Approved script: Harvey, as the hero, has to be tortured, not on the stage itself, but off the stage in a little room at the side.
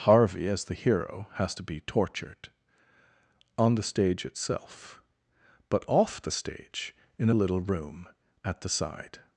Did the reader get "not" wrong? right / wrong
wrong